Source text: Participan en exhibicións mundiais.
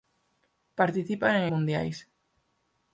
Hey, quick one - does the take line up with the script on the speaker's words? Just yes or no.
no